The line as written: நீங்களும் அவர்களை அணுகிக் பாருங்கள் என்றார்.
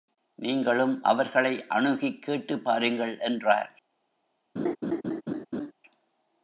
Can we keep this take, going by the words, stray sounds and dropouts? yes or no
no